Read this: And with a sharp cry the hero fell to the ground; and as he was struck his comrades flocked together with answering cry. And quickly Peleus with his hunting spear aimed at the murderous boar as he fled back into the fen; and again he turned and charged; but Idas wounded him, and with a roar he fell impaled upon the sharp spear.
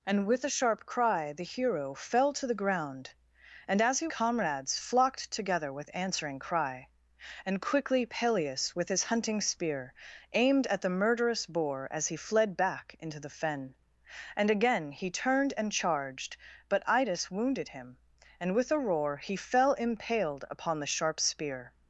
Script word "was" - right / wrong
wrong